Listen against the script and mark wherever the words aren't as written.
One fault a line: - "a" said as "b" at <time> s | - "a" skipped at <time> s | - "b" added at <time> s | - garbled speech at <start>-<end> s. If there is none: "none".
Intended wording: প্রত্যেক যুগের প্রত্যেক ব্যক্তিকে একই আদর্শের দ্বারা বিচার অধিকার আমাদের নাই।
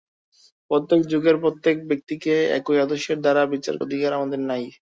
none